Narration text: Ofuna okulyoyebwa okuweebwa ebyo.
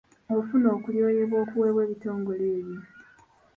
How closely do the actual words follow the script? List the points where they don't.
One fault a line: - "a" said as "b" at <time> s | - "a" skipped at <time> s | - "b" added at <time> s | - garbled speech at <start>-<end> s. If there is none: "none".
- "ebitongole" added at 1.9 s